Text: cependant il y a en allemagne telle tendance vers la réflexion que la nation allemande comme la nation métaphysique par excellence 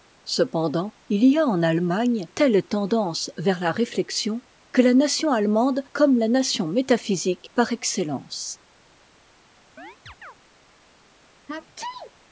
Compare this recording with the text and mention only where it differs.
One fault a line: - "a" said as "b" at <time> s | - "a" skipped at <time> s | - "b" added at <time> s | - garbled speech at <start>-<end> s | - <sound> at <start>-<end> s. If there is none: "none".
- chirp at 9.8-10.3 s
- sneeze at 11.5-12.1 s